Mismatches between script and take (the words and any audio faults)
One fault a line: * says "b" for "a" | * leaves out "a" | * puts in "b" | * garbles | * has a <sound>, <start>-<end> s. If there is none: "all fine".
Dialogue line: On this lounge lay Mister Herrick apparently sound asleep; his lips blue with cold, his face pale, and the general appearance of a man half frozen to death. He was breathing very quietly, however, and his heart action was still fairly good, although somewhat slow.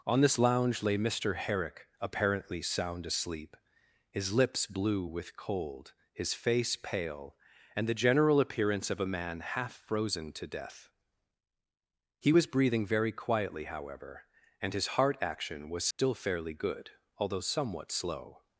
* has a dropout, 15.9-16.0 s